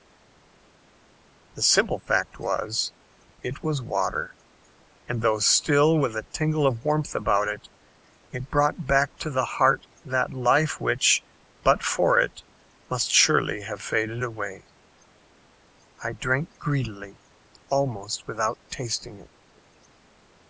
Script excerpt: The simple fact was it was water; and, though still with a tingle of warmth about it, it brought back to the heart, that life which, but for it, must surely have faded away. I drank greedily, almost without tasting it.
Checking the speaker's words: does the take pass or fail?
pass